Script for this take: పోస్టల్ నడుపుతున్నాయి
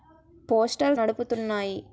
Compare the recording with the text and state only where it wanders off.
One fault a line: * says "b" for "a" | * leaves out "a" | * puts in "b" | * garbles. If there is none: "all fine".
all fine